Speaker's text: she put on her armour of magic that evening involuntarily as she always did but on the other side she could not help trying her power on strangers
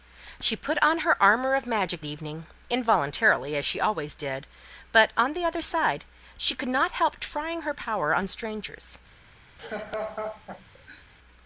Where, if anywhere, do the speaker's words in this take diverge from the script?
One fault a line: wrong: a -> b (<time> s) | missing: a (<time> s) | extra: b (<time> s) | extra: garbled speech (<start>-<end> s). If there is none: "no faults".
missing: that (2.0 s)